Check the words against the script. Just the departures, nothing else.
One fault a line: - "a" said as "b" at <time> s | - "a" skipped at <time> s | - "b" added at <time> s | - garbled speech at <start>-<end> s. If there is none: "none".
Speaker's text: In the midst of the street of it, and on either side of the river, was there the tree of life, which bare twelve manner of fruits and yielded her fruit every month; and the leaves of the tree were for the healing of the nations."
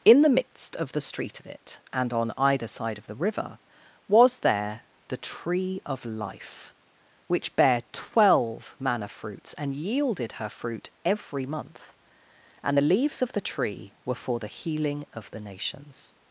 - "of" skipped at 9.1 s